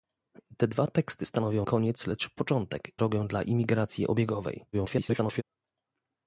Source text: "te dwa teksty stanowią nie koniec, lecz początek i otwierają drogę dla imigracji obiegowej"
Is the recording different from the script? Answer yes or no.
yes